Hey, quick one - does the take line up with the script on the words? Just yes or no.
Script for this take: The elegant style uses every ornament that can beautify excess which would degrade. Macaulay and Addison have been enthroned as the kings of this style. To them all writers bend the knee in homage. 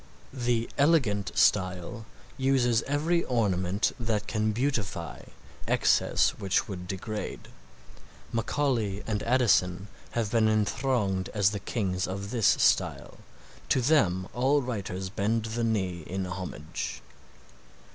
yes